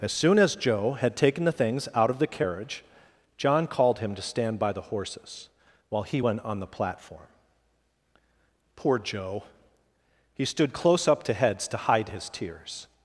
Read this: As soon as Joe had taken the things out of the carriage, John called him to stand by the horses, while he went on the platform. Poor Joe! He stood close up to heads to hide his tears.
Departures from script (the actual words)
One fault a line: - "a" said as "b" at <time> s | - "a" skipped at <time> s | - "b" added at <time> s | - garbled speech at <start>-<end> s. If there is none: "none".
none